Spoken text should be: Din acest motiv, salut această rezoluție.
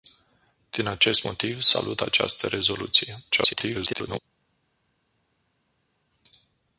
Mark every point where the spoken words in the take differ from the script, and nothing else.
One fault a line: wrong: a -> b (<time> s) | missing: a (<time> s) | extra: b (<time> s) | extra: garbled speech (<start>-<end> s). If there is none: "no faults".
extra: garbled speech (3.3-4.2 s)